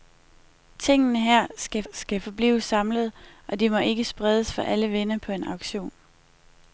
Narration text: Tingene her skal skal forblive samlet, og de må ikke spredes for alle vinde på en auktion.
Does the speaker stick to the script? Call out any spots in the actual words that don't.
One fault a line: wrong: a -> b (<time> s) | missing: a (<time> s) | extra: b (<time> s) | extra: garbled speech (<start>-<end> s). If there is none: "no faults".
no faults